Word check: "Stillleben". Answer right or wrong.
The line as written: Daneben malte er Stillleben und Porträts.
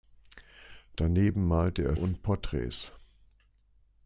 wrong